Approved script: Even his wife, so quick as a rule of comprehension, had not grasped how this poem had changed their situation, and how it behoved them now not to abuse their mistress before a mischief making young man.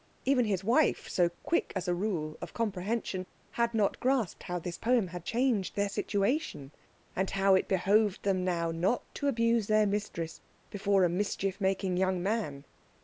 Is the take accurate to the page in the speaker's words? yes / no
yes